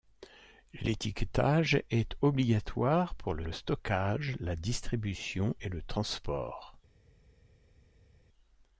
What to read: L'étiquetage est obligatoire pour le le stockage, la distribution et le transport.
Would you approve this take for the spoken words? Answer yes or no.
yes